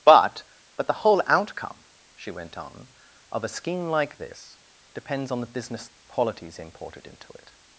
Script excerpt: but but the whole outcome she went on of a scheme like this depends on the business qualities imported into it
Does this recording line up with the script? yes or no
yes